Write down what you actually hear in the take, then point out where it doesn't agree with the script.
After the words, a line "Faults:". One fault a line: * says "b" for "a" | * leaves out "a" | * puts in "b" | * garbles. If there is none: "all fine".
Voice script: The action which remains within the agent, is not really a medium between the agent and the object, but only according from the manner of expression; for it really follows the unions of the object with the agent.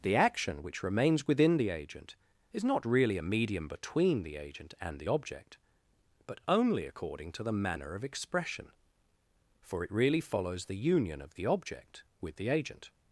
The action which remains within the agent, is not really a medium between the agent and the object, but only according to the manner of expression; for it really follows the union of the object with the agent.
Faults:
* says "to" for "from"
* says "union" for "unions"